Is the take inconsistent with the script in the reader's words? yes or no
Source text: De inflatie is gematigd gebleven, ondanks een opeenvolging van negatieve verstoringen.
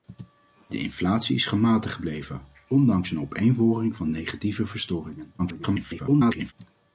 yes